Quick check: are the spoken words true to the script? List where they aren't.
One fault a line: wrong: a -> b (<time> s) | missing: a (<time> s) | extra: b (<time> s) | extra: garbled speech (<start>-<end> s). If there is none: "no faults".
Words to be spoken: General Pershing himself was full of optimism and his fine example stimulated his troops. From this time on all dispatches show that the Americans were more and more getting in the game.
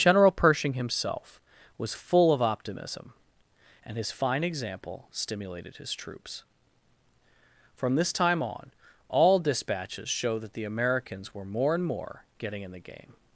no faults